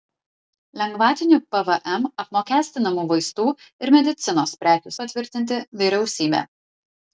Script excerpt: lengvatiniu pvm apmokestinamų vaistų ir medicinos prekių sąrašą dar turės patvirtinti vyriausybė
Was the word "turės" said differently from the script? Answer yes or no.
yes